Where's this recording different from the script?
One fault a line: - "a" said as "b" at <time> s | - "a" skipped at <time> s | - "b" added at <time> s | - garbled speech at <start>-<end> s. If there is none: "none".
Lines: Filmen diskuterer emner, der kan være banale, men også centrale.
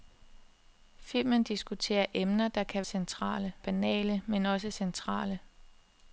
- "være" said as "centrale" at 2.8 s